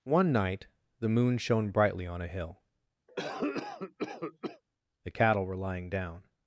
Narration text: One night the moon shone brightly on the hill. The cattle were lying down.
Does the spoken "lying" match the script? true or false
true